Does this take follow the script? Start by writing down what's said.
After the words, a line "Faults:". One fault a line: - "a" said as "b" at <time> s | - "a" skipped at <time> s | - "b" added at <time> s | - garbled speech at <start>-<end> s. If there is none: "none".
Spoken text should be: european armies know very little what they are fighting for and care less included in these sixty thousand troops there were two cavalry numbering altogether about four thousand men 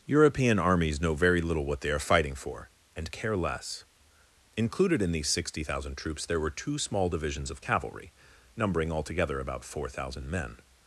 european armies know very little what they are fighting for and care less included in these sixty thousand troops there were two small divisions of cavalry numbering altogether about four thousand men
Faults:
- "small divisions of" added at 6.8 s